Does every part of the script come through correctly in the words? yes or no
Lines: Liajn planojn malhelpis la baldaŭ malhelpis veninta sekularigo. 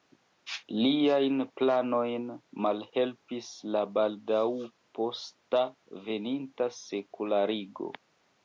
no